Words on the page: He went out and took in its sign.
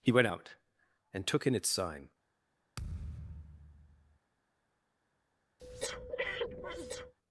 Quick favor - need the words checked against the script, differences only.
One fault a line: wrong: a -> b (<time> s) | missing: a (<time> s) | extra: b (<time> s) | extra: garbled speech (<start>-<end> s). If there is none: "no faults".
no faults